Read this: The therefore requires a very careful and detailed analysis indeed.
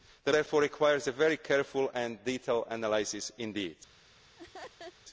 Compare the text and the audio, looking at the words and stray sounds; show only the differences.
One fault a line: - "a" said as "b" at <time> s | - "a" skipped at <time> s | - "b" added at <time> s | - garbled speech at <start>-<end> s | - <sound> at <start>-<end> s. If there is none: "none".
- laugh at 4.4-5.0 s